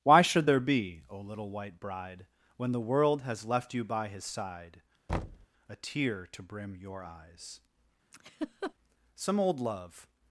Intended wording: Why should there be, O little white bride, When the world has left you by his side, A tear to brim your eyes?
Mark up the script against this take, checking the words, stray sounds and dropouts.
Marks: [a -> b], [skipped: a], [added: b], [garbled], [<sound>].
Why should there be, O little white bride, When the world has left you by his side, [thud] A tear to brim your eyes? [laugh] [added: Some old love]